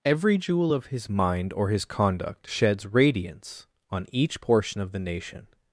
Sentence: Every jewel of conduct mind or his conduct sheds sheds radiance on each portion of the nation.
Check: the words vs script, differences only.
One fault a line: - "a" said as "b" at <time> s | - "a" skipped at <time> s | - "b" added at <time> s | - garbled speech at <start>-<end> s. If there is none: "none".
- "conduct" said as "his" at 0.9 s
- "sheds" skipped at 2.8 s